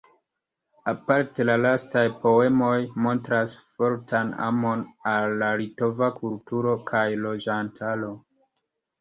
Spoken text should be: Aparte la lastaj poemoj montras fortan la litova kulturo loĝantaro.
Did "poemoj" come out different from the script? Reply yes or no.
no